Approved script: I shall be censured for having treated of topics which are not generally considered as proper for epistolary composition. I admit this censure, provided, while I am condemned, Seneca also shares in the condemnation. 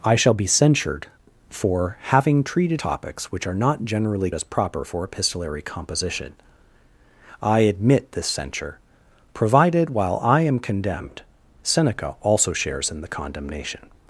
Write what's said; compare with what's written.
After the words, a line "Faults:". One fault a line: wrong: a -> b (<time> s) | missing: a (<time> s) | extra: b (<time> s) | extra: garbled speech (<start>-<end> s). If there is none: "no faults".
I shall be censured for having treated topics which are not generally as proper for epistolary composition. I admit this censure, provided, while I am condemned, Seneca also shares in the condemnation.
Faults:
missing: of (2.8 s)
missing: considered (4.3 s)